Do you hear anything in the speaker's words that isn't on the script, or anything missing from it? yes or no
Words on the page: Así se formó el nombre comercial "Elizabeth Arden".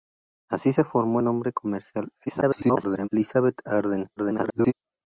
yes